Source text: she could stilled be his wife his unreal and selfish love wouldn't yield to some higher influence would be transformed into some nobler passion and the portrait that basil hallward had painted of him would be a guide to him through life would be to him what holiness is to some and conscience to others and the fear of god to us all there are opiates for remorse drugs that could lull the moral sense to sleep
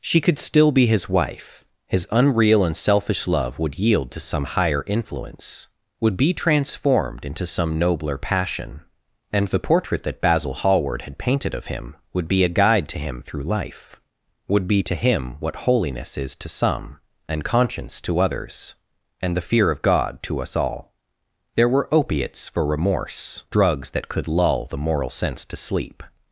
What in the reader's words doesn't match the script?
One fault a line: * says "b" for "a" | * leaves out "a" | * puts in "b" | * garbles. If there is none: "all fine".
* says "still" for "stilled"
* says "would" for "wouldn't"
* says "were" for "are"